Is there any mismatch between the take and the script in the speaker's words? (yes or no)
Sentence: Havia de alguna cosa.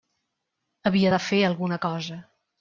yes